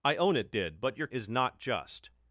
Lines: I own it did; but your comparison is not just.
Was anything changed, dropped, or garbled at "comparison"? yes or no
yes